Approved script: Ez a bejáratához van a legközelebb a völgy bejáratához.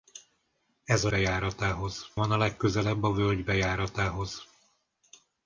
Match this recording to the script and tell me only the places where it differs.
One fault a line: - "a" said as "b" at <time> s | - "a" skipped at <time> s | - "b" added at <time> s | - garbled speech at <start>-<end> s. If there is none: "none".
none